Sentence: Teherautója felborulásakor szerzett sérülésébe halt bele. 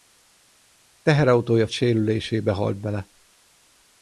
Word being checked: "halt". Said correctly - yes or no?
yes